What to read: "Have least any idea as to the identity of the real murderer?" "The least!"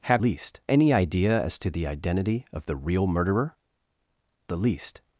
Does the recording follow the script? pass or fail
pass